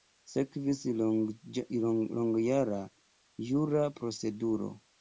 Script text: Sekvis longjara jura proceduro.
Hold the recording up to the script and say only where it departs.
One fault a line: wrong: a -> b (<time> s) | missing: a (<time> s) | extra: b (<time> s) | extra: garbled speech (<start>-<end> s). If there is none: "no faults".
no faults